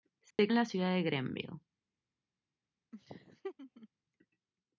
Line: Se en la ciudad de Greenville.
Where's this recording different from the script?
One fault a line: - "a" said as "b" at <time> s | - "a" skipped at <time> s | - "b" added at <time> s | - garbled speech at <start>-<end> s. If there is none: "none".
none